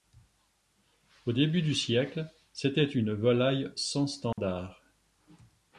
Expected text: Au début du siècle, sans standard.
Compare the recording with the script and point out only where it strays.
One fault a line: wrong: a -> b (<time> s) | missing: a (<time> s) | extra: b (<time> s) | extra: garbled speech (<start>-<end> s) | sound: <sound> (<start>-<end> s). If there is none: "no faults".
extra: c'était une volaille (2.5 s)
sound: dropout (4.3-4.4 s)